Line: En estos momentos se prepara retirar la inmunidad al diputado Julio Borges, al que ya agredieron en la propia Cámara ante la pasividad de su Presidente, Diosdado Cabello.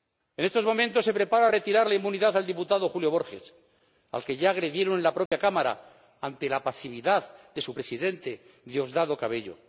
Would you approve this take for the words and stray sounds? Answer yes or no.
no